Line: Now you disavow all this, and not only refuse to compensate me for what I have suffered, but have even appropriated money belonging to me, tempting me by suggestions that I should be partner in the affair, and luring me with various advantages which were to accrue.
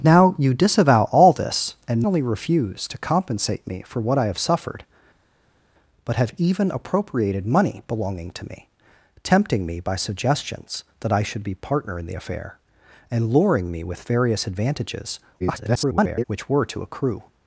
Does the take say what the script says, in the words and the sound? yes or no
no